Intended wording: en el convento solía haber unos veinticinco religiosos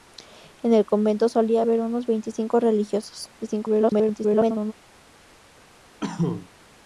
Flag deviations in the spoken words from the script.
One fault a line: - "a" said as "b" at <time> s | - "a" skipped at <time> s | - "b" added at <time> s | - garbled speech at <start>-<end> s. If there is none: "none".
- garbled speech at 3.4-4.7 s